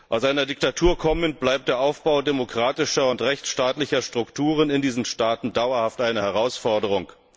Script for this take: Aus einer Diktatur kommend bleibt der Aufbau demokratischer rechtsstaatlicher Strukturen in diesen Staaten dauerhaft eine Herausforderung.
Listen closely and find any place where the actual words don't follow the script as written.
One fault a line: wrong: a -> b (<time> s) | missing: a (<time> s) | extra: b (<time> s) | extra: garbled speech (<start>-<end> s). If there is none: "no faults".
extra: und (3.1 s)